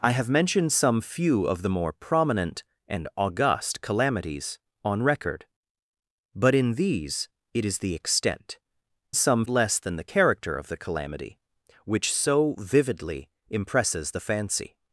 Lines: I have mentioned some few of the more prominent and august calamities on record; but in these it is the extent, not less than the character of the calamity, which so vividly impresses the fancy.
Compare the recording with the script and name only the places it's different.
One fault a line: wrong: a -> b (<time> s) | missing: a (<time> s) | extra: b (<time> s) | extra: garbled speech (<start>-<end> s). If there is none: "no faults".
wrong: not -> some (9.1 s)